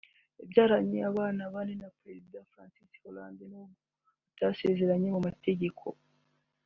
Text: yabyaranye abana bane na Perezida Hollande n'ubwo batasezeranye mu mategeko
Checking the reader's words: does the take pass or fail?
fail